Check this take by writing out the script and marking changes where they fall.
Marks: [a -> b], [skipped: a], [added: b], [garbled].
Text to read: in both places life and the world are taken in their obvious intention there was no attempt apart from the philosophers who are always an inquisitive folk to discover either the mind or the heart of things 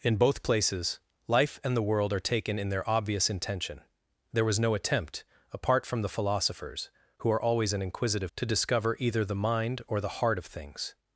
in both places life and the world are taken in their obvious intention there was no attempt apart from the philosophers who are always an inquisitive [skipped: folk] to discover either the mind or the heart of things